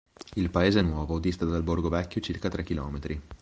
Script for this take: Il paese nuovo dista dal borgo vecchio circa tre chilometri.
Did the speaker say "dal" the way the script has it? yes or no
yes